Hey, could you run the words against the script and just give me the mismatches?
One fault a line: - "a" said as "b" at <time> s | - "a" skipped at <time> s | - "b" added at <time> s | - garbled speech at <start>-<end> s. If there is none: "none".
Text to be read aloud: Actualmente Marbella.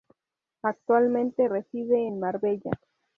- "reside en" added at 1.4 s